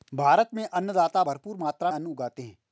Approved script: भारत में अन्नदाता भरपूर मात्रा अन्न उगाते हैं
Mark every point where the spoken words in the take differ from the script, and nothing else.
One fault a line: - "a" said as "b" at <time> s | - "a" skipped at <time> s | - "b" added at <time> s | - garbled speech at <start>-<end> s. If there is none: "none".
none